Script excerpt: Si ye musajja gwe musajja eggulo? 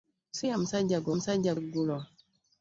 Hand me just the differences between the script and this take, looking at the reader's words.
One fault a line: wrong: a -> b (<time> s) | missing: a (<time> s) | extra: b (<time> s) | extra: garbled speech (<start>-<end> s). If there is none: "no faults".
no faults